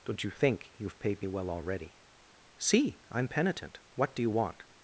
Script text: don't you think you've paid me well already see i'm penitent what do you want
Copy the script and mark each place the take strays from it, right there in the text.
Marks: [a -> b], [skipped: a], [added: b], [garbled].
don't you think you've paid me well already see i'm penitent what do you want